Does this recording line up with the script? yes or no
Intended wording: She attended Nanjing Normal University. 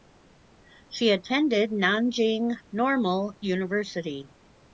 yes